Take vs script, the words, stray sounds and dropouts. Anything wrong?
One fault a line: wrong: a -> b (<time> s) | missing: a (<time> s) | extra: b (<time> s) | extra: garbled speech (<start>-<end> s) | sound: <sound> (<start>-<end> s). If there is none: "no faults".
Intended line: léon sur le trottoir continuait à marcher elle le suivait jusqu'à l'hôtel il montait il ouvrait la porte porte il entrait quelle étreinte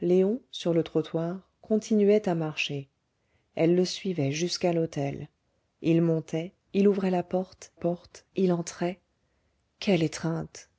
no faults